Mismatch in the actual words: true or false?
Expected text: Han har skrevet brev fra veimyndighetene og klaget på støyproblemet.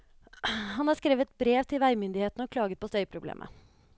true